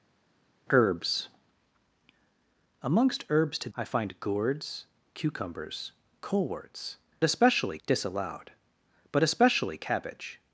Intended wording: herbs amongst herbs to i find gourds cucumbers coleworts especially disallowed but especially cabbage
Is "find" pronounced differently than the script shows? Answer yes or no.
no